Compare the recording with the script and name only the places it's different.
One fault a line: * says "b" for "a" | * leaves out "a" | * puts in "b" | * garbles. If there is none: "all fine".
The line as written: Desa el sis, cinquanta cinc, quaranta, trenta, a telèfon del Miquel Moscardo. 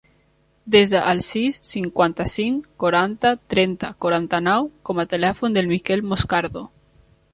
* puts in "quaranta nou com"